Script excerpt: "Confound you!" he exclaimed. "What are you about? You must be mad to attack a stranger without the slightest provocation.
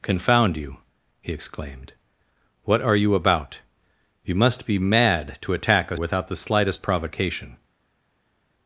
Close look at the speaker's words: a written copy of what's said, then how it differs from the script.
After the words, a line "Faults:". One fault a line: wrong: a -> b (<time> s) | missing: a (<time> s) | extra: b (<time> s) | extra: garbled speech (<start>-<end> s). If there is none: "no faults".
"Confound you!" he exclaimed. "What are you about? You must be mad to attack a without the slightest provocation.
Faults:
missing: stranger (6.0 s)